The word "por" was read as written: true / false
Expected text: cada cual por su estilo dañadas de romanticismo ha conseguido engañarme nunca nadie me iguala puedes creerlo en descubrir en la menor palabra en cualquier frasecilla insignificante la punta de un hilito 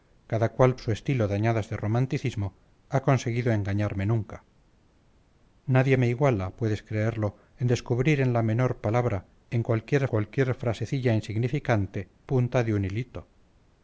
false